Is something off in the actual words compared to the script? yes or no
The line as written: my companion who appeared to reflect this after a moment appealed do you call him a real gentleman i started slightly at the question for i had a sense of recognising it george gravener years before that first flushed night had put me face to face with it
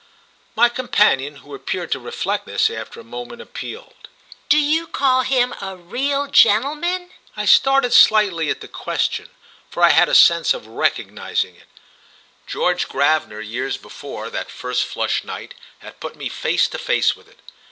no